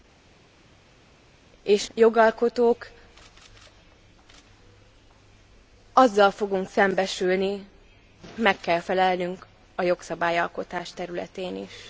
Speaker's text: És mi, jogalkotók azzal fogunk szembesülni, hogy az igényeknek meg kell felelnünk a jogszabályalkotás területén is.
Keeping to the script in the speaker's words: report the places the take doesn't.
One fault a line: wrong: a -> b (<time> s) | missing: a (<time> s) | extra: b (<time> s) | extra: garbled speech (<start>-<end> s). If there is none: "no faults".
missing: mi (1.9 s)
missing: hogy az igényeknek (7.6 s)